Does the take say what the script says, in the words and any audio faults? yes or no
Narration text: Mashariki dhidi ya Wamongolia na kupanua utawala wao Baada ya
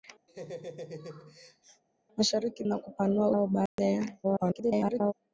no